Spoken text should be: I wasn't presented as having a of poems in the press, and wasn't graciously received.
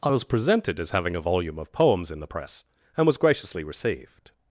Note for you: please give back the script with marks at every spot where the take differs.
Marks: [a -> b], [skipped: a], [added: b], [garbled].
I [wasn't -> was] presented as having a [added: volume] of poems in the press, and [wasn't -> was] graciously received.